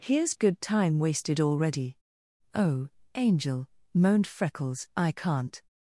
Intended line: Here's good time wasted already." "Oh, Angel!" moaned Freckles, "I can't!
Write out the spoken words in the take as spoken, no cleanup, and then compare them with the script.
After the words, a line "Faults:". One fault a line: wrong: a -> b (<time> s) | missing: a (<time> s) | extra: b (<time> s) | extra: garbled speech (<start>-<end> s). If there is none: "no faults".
Here's good time wasted already." "Oh, Angel!" moaned Freckles, "I can't!
Faults:
no faults